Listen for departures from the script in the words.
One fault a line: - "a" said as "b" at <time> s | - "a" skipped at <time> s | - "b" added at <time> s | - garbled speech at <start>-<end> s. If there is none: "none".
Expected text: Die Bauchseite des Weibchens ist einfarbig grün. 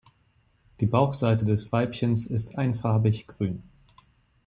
none